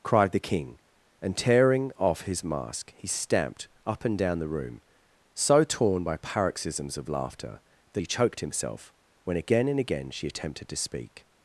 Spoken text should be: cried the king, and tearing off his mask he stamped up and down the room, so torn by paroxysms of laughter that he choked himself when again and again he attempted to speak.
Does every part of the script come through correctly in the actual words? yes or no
no